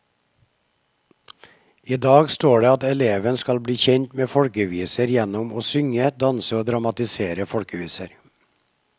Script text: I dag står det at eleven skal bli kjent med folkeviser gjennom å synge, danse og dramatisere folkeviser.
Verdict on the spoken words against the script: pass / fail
pass